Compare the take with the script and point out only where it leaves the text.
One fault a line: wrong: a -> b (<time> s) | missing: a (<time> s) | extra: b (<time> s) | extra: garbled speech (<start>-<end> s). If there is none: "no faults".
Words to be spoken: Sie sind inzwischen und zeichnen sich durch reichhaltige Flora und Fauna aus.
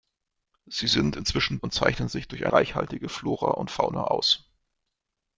no faults